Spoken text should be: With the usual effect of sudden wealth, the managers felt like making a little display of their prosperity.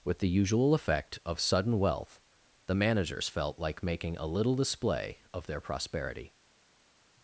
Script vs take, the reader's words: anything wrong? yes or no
no